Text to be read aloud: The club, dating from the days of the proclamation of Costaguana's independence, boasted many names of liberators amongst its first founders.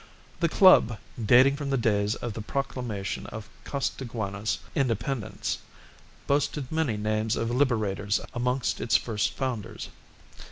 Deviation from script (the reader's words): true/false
false